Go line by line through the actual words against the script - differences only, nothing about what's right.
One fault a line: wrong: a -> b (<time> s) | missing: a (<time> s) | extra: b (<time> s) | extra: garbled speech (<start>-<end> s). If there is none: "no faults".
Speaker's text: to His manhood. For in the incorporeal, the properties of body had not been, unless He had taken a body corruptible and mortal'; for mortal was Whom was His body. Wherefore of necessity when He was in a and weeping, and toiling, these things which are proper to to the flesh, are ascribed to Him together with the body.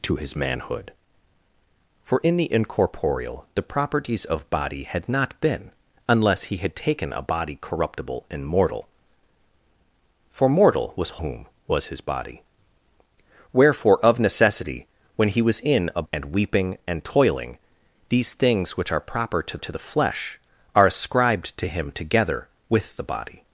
no faults